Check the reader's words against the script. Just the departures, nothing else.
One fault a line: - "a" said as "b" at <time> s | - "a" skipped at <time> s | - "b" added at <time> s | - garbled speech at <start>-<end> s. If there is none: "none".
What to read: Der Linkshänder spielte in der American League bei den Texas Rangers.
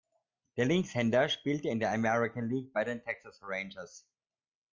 none